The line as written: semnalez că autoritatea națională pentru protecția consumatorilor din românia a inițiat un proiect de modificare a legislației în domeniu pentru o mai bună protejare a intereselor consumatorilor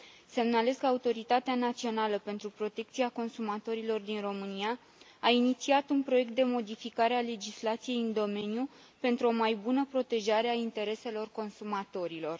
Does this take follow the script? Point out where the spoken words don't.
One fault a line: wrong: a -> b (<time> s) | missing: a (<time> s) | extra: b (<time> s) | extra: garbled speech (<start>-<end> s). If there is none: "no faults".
no faults